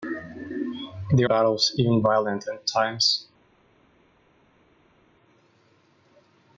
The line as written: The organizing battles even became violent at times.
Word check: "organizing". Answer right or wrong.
wrong